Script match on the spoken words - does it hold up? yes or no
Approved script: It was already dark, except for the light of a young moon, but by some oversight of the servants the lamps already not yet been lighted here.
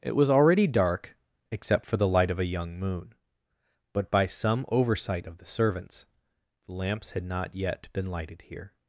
no